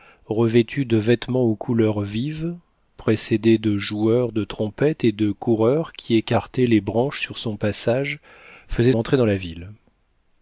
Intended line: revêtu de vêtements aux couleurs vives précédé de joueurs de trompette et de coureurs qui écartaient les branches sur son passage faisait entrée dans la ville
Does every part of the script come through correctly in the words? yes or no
yes